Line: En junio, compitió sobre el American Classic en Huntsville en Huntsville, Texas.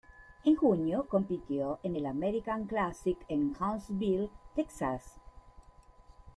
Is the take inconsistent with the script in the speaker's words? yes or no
yes